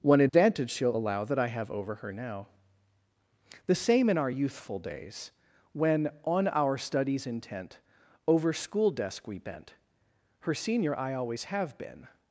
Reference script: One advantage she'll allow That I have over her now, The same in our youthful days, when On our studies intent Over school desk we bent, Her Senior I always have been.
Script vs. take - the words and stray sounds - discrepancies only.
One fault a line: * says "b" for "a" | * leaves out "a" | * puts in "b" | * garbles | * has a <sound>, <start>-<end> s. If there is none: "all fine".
* has a dropout, 0.3-0.3 s